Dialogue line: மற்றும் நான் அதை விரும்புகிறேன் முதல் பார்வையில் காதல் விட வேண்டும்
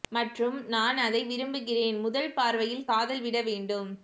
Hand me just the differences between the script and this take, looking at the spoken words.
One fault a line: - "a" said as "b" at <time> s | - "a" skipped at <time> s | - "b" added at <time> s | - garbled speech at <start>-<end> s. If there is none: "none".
none